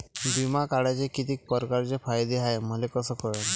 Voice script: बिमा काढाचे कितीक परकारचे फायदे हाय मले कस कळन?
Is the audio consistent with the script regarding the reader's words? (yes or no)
yes